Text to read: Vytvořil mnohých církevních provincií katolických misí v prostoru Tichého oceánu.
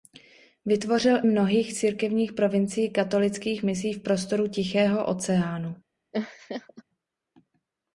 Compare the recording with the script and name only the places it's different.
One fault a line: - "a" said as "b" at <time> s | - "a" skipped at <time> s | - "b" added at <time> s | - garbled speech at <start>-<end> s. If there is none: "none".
none